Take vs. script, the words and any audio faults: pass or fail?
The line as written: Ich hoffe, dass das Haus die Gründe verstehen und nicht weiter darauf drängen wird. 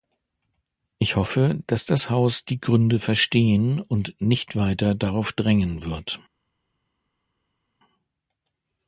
pass